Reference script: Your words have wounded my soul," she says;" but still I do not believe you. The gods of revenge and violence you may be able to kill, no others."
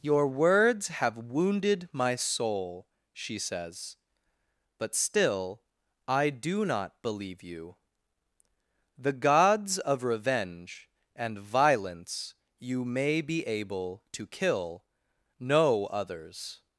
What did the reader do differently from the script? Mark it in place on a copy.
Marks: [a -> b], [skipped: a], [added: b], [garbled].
Your words have wounded my soul," she says;" but still I do not believe you. The gods of revenge and violence you may be able to kill, no others."